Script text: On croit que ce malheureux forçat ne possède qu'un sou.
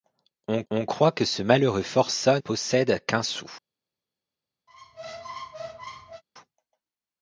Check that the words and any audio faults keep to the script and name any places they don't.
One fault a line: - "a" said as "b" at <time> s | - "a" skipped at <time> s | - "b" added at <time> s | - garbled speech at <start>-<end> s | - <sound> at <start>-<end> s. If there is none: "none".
- "on" added at 0.7 s
- "ne" skipped at 2.4 s
- squeak at 4.7-6.2 s